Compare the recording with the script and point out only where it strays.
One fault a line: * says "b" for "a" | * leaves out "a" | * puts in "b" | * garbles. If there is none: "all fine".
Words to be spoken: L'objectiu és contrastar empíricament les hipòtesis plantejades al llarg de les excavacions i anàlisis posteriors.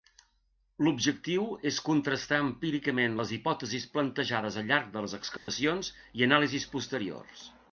all fine